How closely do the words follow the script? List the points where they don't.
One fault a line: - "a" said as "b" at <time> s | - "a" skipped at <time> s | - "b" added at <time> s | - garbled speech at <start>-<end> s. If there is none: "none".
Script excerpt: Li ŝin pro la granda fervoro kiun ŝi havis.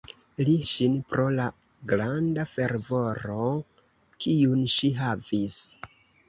none